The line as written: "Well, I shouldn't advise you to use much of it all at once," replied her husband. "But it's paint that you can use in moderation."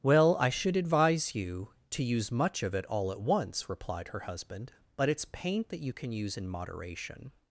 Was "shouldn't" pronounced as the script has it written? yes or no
no